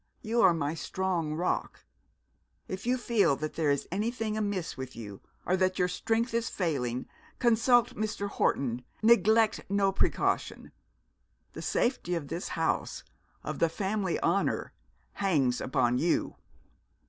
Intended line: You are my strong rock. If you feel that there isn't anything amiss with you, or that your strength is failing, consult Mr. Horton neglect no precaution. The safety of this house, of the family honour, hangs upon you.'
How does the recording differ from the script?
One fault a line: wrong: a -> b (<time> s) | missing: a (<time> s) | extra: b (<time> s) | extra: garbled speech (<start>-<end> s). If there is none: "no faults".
wrong: isn't -> is (3.7 s)